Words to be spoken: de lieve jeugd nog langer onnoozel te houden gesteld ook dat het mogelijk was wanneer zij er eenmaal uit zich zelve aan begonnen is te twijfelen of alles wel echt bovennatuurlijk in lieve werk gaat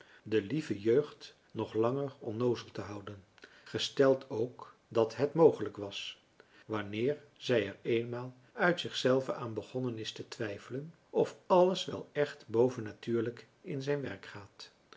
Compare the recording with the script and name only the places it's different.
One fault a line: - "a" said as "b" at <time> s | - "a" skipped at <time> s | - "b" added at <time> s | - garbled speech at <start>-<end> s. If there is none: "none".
- "lieve" said as "zijn" at 13.8 s